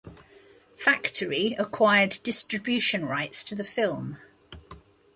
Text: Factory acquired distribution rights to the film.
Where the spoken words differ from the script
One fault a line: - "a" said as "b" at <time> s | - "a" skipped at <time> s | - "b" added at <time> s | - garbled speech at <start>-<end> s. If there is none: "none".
none